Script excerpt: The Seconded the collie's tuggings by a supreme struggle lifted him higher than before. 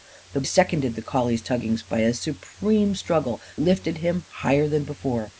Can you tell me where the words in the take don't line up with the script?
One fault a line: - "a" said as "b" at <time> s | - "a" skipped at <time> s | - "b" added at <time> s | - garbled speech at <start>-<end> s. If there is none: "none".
none